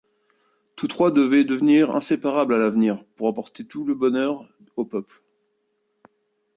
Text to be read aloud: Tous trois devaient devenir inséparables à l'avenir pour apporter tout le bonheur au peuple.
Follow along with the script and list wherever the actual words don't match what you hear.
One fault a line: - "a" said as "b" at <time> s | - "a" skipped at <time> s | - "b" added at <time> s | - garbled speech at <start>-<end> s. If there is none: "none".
none